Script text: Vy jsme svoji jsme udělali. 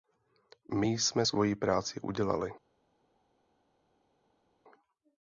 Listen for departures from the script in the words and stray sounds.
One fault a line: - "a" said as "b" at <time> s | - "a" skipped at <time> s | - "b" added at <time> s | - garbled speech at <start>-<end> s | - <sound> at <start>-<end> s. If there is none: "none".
- "Vy" said as "My" at 0.7 s
- "jsme" said as "práci" at 1.5 s